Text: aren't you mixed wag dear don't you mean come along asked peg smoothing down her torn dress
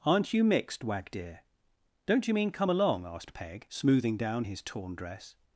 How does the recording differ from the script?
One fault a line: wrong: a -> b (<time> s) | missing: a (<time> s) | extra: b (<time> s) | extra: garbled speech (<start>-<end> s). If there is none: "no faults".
wrong: her -> his (4.4 s)